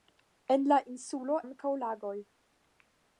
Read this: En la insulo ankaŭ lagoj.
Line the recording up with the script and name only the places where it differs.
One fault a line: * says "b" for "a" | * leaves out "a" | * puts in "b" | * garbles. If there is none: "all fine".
all fine